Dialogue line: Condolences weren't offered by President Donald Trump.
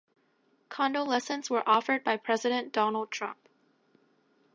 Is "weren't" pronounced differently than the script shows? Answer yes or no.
yes